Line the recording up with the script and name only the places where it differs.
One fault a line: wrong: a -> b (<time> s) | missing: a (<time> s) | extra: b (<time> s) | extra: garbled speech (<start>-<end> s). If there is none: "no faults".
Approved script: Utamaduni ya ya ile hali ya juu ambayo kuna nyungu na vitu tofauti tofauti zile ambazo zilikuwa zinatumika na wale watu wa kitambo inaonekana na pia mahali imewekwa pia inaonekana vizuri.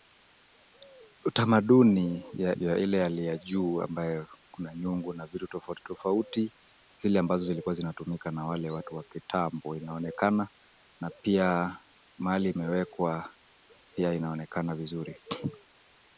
no faults